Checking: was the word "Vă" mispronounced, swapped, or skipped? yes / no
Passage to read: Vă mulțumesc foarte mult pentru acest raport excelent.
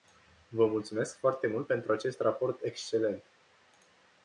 no